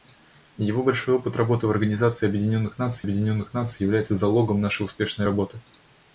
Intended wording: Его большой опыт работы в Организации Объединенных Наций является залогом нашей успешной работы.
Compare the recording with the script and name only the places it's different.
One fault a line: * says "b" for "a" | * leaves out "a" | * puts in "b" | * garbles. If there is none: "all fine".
* puts in "Объединенных Наций"